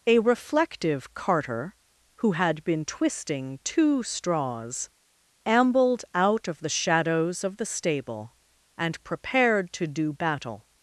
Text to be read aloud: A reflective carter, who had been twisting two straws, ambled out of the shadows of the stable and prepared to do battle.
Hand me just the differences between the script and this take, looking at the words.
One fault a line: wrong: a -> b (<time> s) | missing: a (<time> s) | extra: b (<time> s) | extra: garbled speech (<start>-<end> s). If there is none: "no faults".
no faults